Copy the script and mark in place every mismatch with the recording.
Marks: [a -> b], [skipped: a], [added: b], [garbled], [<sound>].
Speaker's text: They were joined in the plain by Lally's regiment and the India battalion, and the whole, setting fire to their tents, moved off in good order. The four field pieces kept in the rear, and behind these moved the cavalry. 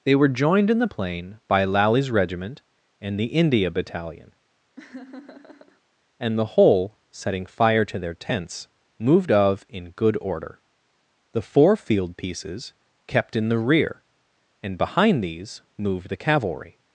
They were joined in the plain by Lally's regiment and the India battalion, [laugh] and the whole, setting fire to their tents, moved [off -> of] in good order. The four field pieces kept in the rear, and behind these moved the cavalry.